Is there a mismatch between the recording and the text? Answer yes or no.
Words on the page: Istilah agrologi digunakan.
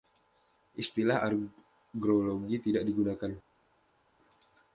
yes